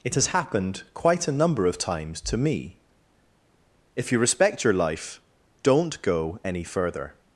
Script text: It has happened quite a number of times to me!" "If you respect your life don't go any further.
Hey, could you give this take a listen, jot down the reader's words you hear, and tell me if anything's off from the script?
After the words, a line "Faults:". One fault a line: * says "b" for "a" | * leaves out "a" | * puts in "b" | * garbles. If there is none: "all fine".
It has happened quite a number of times to me!" "If you respect your life don't go any further.
Faults:
all fine